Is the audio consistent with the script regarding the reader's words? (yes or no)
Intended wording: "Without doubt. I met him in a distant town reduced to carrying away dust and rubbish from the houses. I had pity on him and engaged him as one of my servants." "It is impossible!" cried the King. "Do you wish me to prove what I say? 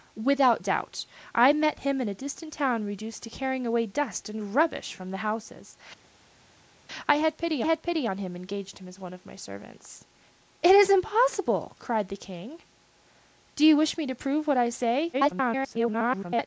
no